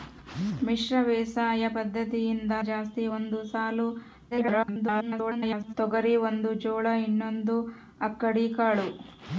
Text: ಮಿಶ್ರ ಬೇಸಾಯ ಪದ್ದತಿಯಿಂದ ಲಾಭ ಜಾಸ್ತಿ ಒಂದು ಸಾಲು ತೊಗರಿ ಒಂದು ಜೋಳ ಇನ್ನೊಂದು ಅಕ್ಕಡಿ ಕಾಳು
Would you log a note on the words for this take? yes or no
yes